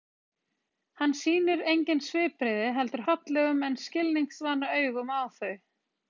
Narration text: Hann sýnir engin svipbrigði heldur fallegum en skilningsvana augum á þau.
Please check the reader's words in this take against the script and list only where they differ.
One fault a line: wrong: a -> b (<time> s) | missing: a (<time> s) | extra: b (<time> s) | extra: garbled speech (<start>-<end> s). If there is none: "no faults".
no faults